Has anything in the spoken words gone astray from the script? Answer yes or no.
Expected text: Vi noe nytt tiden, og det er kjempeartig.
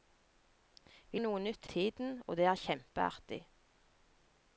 no